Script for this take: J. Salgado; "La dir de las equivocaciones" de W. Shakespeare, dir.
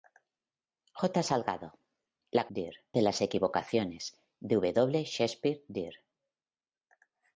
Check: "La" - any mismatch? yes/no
no